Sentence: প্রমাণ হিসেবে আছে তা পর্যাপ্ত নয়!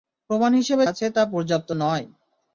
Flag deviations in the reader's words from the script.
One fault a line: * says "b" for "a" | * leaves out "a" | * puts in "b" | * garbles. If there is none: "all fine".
all fine